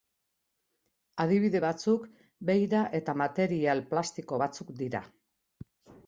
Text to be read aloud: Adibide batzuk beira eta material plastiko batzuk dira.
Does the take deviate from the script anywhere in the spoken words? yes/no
no